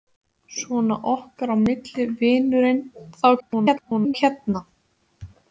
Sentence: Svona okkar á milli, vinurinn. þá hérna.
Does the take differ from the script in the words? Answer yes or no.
yes